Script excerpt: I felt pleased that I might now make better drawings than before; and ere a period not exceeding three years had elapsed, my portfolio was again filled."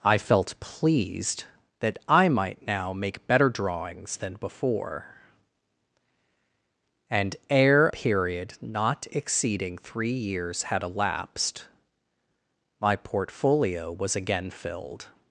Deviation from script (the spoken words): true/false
true